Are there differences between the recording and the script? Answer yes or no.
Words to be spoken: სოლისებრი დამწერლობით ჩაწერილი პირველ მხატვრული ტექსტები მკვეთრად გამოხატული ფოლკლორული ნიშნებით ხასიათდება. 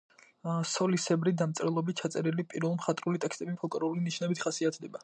yes